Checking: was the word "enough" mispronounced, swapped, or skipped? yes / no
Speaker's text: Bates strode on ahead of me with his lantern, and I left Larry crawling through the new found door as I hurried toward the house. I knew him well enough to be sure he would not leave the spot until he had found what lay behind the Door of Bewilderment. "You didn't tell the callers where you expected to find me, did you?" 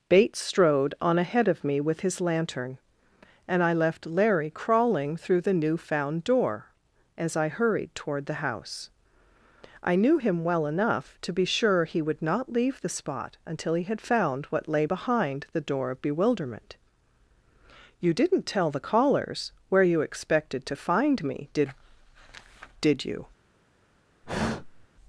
no